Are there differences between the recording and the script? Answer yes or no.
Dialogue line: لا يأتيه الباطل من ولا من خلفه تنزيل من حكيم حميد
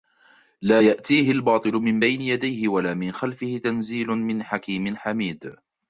yes